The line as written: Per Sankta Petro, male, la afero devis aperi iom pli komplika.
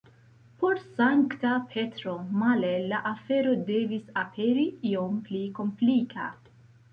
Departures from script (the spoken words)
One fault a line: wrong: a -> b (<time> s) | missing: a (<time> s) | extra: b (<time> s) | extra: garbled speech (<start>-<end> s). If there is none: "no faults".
wrong: Per -> Por (0.6 s)